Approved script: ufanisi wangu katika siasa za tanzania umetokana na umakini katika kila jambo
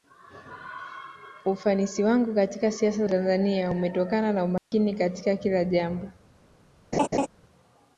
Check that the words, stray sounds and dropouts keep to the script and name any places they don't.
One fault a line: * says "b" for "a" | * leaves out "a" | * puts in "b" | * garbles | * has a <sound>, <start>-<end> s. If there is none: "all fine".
* leaves out "za"
* has a dropout, 4.6-4.7 s
* has a laugh, 6.9-7.3 s